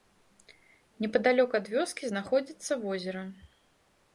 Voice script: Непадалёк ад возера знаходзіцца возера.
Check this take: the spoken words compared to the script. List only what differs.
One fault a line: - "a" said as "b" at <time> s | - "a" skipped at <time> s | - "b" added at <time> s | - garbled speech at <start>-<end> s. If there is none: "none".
- "возера" said as "вёскі" at 1.7 s